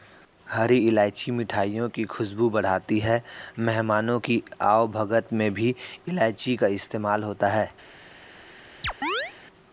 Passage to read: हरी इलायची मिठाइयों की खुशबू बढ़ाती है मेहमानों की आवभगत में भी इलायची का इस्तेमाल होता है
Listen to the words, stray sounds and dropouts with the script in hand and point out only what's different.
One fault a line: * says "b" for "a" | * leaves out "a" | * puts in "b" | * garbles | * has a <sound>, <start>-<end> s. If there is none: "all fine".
* has a chirp, 8.8-9.3 s